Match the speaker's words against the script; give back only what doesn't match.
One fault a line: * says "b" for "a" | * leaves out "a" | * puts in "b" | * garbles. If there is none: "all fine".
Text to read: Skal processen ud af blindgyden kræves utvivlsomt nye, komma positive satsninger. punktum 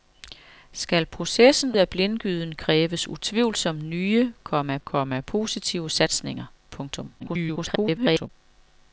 * leaves out "ud"
* puts in "komma"
* garbles